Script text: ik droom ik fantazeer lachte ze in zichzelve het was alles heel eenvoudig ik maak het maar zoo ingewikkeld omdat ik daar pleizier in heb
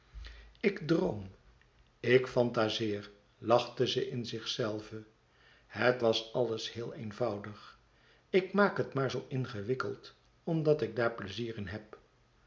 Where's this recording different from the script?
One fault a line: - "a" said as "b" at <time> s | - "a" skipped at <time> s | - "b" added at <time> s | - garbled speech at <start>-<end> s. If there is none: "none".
none